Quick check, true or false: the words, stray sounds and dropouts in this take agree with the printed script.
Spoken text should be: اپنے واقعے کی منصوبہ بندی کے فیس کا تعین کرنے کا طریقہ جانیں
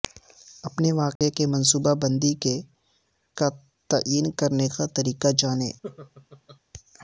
false